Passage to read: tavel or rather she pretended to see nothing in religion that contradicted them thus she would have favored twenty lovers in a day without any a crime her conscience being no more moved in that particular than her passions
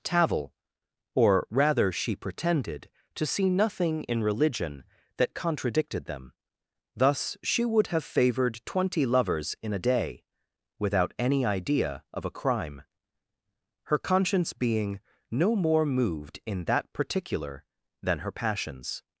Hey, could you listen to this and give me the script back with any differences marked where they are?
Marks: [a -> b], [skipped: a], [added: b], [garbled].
tavel or rather she pretended to see nothing in religion that contradicted them thus she would have favored twenty lovers in a day without any [added: idea of] a crime her conscience being no more moved in that particular than her passions